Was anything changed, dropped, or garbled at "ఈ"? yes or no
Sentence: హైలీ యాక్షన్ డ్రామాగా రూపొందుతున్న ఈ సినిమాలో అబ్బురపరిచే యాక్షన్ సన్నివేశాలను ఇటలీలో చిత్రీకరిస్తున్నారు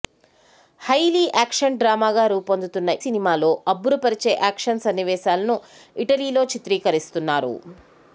yes